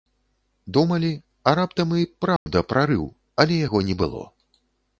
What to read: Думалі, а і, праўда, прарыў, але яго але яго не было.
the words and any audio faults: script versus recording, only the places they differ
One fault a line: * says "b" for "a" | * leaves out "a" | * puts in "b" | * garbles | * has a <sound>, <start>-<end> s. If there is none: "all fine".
* puts in "раптам"
* has a dropout, 2.4-2.5 s
* leaves out "але яго"